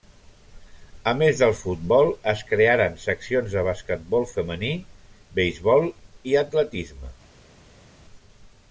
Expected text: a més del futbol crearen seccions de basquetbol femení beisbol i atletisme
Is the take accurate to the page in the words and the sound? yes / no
no